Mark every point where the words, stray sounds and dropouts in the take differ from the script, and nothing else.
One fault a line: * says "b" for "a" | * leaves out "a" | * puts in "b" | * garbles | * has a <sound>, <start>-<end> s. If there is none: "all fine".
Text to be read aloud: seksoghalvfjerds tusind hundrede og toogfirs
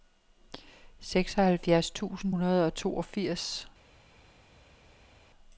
all fine